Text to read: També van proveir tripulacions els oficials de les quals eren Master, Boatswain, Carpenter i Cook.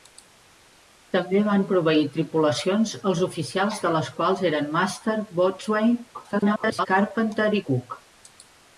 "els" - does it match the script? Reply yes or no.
yes